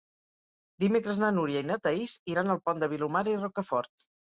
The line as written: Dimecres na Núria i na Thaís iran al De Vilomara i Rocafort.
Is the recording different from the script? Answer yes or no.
yes